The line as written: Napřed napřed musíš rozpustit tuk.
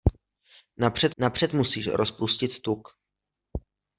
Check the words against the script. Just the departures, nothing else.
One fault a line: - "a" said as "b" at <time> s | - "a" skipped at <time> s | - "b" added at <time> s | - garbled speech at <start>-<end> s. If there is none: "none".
none